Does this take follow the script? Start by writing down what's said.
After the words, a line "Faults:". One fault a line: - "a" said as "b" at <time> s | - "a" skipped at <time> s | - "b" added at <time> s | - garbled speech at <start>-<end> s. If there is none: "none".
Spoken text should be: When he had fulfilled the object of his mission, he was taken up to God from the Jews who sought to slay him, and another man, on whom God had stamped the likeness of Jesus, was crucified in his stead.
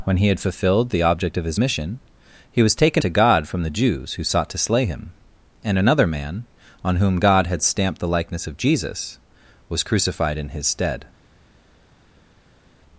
When he had fulfilled the object of his mission, he was taken to God from the Jews who sought to slay him, and another man, on whom God had stamped the likeness of Jesus, was crucified in his stead.
Faults:
- "up" skipped at 3.0 s